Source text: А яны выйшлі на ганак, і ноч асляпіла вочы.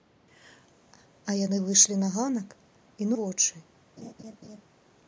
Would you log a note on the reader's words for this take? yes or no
yes